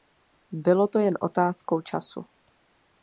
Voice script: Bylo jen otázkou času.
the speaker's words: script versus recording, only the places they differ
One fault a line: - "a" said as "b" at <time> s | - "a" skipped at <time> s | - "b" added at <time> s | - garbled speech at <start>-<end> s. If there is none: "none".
- "to" added at 0.9 s